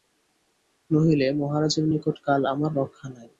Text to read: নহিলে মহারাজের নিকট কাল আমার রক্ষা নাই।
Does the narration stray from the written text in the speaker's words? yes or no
no